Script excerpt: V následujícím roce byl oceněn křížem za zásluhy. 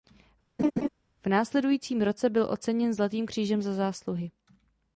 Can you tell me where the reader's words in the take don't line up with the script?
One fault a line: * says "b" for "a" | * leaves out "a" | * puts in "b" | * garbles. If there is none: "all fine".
* puts in "zlatým"